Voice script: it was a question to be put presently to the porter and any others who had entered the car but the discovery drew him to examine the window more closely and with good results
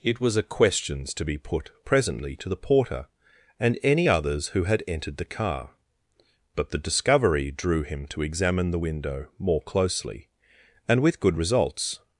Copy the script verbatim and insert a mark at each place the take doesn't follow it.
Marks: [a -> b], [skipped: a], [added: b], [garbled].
it was a [question -> questions] to be put presently to the porter and any others who had entered the car but the discovery drew him to examine the window more closely and with good results